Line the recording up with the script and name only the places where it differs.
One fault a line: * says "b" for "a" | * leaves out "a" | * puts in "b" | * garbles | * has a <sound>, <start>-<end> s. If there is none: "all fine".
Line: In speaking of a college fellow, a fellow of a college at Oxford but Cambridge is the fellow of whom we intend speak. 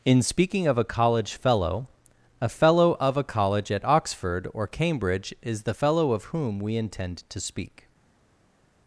* says "or" for "but"
* puts in "to"